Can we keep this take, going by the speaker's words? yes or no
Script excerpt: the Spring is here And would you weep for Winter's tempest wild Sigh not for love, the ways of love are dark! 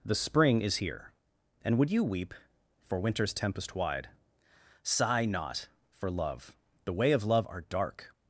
no